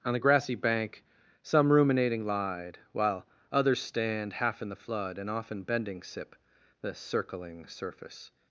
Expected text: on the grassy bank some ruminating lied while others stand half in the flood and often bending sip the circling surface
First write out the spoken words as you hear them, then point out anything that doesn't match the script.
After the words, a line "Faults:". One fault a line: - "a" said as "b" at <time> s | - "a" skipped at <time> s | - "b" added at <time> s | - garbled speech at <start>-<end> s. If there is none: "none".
on the grassy bank some ruminating lied while others stand half in the flood and often bending sip the circling surface
Faults:
none